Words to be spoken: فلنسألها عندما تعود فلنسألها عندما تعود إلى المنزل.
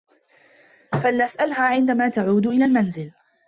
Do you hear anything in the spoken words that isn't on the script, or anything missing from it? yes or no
yes